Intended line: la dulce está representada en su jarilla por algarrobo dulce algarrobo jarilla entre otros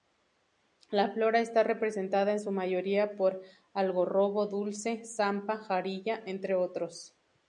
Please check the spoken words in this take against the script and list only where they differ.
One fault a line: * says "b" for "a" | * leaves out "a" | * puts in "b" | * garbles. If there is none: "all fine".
* says "flora" for "dulce"
* says "mayoría" for "jarilla"
* says "zampa" for "algarrobo"